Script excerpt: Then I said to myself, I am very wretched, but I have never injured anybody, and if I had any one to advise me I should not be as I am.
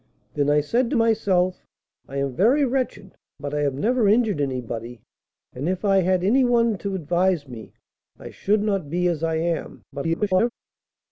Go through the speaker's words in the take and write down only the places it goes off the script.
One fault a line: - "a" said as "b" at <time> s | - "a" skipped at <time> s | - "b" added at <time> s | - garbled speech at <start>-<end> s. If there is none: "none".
- garbled speech at 9.9-10.5 s